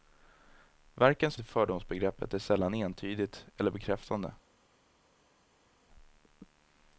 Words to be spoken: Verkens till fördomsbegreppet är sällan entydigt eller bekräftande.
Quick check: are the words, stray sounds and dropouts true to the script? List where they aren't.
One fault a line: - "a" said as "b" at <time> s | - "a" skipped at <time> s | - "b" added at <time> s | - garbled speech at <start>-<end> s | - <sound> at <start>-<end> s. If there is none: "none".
none